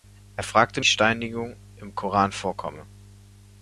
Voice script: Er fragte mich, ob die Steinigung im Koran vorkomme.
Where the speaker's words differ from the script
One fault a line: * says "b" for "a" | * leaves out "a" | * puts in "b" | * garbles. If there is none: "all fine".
* leaves out "mich ob die"